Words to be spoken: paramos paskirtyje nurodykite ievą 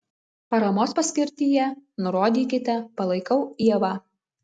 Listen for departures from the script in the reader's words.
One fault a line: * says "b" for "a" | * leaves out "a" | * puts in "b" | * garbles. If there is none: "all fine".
* puts in "palaikau"